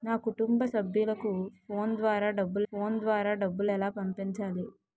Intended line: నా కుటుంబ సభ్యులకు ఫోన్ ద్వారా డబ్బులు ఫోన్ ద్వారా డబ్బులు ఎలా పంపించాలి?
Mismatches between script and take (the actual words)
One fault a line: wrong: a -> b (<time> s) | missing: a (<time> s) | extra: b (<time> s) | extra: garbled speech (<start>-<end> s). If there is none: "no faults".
no faults